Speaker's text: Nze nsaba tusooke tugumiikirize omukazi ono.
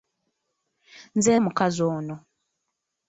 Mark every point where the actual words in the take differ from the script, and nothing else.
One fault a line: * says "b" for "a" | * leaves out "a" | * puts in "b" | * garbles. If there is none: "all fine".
* leaves out "nsaba tusooke tugumiikirize"